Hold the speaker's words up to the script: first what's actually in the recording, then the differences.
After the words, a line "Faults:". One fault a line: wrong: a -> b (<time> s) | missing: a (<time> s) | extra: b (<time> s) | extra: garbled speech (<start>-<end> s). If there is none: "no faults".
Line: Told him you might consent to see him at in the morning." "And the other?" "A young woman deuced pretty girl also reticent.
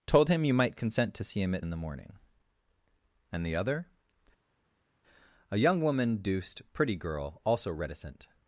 Told him you might consent to see him at in the morning." "And the other?" "A young woman deuced pretty girl also reticent.
Faults:
no faults